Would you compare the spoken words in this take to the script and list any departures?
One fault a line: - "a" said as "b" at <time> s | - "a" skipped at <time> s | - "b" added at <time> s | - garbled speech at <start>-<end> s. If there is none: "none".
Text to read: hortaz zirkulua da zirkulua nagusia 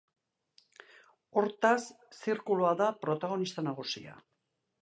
- "zirkulua" said as "protagonista" at 3.1 s